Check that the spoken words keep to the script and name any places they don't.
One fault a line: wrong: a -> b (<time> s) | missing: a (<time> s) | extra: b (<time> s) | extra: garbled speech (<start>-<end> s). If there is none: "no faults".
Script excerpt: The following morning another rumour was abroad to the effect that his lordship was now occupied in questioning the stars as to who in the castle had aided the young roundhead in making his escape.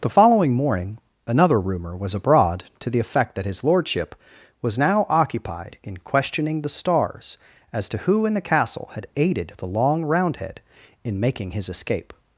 wrong: young -> long (9.7 s)